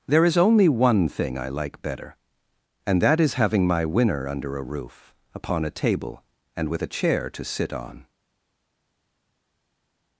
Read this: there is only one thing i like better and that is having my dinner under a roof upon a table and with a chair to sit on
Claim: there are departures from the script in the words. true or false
true